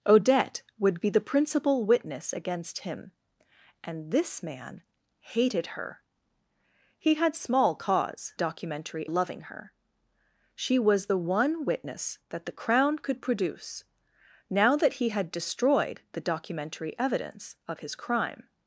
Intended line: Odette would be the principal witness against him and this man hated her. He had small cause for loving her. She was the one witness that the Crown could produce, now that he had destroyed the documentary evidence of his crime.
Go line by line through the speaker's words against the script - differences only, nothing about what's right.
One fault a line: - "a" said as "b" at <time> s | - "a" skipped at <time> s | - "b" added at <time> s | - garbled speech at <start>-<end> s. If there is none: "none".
- "for" said as "documentary" at 8.3 s